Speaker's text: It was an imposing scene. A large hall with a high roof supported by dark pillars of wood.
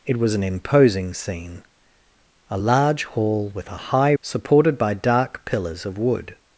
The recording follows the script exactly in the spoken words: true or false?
false